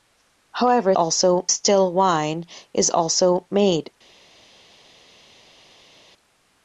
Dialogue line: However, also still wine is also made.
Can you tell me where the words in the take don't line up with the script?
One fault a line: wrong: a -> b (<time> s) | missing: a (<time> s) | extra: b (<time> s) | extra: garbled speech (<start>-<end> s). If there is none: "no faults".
no faults